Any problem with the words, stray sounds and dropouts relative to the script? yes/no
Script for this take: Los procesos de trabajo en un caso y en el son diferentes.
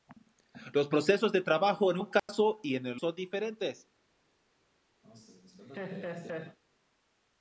yes